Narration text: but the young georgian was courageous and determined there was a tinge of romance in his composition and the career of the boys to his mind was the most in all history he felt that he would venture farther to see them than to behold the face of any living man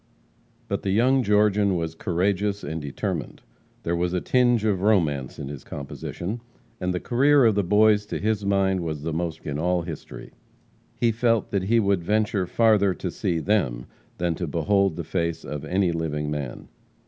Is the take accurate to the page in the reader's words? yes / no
yes